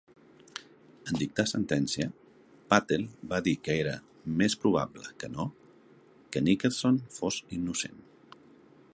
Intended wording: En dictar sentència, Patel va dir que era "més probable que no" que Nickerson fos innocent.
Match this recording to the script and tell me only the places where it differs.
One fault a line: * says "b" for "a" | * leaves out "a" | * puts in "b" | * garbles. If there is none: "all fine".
all fine